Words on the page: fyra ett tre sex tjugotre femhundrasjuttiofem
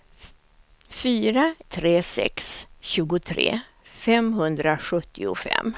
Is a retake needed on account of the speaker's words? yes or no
yes